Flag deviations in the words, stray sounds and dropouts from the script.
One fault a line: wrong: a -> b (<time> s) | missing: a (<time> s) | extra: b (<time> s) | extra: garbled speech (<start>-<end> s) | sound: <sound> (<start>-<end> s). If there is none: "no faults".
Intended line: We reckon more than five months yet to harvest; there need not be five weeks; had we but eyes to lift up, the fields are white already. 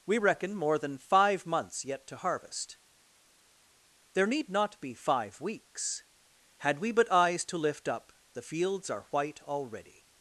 no faults